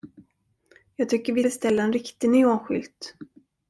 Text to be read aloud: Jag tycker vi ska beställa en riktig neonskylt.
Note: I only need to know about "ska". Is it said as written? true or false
false